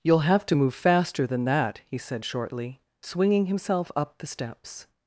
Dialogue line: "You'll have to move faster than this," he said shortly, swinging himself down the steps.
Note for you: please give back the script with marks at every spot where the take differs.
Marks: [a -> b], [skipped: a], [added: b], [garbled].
"You'll have to move faster than [this," -> that] he said shortly, swinging himself [down -> up] the steps.